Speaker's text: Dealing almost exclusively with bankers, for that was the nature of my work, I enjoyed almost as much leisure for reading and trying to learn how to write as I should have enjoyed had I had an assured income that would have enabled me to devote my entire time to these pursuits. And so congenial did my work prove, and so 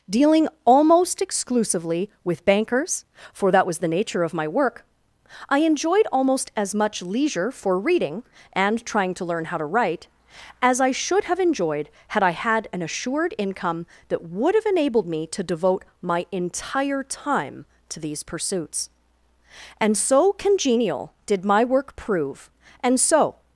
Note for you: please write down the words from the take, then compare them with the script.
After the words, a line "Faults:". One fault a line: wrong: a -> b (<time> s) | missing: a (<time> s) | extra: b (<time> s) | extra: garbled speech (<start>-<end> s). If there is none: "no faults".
Dealing almost exclusively with bankers, for that was the nature of my work, I enjoyed almost as much leisure for reading and trying to learn how to write as I should have enjoyed had I had an assured income that would have enabled me to devote my entire time to these pursuits. And so congenial did my work prove, and so
Faults:
no faults